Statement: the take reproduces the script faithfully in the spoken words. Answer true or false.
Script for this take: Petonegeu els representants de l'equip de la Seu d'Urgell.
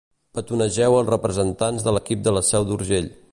true